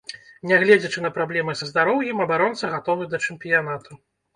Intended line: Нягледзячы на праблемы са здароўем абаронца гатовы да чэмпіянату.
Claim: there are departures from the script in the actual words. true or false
false